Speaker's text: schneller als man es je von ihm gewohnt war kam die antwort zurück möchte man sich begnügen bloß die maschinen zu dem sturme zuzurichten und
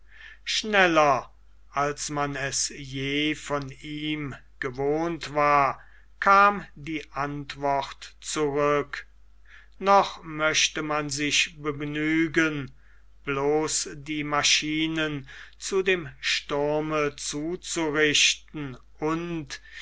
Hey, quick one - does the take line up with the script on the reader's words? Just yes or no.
no